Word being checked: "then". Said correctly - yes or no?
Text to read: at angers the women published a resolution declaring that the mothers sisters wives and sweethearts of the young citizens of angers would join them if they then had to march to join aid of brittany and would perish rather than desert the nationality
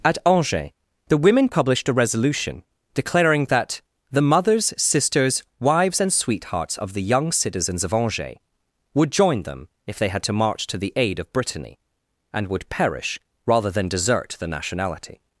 no